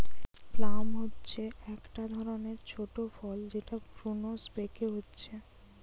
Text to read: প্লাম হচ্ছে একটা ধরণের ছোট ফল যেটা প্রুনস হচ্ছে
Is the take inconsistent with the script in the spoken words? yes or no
yes